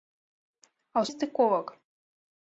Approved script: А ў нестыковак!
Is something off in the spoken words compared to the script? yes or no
no